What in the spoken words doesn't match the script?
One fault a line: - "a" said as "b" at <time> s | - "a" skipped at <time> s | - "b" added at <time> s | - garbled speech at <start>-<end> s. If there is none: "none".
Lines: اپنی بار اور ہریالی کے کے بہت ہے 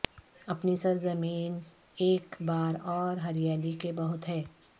- "سرزمین ایک" added at 0.7 s
- "کے" skipped at 3.9 s